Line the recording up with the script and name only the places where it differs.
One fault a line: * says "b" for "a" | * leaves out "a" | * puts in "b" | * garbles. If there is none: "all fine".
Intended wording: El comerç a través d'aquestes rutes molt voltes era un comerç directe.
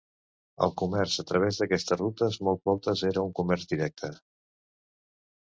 all fine